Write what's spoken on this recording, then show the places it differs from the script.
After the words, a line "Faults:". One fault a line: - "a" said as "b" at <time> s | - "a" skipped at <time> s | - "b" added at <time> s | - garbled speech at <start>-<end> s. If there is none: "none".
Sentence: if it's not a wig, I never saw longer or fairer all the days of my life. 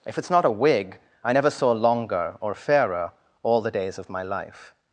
if it's not a wig, I never saw longer or fairer all the days of my life.
Faults:
none